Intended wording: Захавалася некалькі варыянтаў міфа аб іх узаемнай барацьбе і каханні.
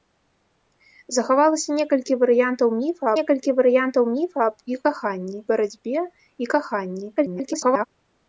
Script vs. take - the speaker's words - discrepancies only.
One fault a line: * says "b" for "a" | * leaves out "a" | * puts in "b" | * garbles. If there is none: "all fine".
* puts in "некалькі варыянтаў міфа"
* says "каханні" for "узаемнай"
* garbles